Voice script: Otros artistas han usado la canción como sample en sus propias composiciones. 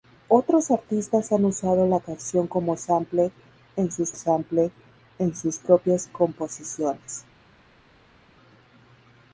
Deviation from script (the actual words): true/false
true